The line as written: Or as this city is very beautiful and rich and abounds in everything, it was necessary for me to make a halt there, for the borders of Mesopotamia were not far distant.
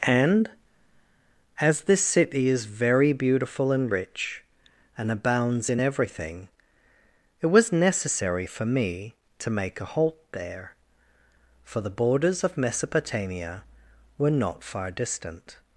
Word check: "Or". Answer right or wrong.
wrong